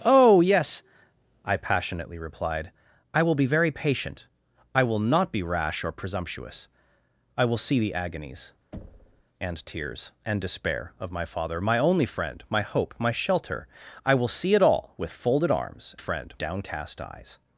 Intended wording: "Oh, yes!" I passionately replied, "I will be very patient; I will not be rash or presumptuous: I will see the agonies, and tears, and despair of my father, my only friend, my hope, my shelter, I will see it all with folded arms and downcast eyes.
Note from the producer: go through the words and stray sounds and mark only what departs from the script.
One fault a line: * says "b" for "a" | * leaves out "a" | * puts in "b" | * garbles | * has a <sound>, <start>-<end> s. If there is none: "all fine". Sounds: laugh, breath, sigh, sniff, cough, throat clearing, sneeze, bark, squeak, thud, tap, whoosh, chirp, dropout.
* has a thud, 8.7-9.2 s
* says "friend" for "and"